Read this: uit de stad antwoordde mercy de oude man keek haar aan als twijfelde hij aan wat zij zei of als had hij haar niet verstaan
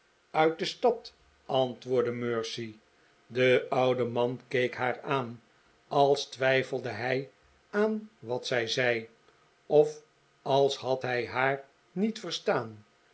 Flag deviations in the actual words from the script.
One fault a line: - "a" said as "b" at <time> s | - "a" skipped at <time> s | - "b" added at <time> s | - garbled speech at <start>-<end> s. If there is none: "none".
none